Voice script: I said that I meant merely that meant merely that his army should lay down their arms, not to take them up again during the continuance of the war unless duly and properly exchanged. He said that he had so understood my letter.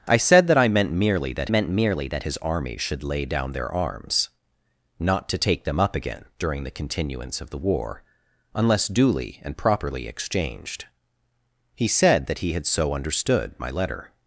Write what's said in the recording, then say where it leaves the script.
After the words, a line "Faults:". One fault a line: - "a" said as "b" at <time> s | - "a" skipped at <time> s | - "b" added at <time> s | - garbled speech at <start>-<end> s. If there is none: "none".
I said that I meant merely that meant merely that his army should lay down their arms, not to take them up again during the continuance of the war unless duly and properly exchanged. He said that he had so understood my letter.
Faults:
none